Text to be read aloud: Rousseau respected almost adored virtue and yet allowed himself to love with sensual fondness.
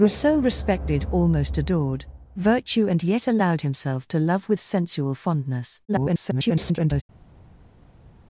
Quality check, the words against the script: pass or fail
fail